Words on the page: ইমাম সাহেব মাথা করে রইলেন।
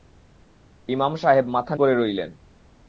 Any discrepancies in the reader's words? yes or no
no